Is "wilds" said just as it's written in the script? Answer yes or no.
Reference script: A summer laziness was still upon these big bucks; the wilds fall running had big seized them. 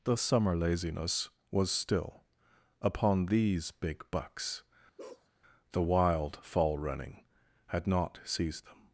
no